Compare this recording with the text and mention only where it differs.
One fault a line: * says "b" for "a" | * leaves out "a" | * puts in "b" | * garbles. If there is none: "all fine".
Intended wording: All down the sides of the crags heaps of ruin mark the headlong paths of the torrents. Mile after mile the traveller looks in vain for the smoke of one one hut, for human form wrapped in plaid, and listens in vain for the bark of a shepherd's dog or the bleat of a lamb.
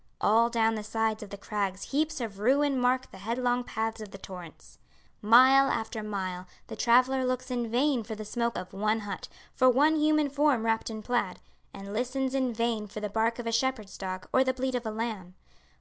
* leaves out "one"
* puts in "one"